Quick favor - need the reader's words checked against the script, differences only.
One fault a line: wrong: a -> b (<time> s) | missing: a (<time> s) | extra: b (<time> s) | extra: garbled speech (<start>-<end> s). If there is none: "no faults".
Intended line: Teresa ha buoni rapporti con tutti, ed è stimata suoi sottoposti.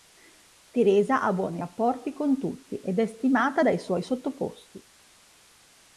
extra: dai (3.6 s)